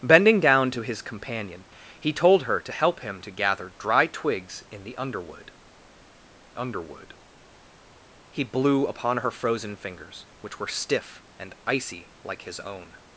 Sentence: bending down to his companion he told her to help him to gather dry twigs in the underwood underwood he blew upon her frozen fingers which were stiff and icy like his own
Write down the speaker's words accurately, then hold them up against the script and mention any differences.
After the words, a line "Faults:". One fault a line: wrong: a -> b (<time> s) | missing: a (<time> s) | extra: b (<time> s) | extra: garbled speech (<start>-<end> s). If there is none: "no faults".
bending down to his companion he told her to help him to gather dry twigs in the underwood underwood he blew upon her frozen fingers which were stiff and icy like his own
Faults:
no faults